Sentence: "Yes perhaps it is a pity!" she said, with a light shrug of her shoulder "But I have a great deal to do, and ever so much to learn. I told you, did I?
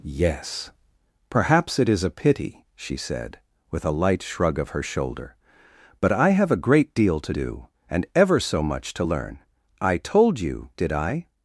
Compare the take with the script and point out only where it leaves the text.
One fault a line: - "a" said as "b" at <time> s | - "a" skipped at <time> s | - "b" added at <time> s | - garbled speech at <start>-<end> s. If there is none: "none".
none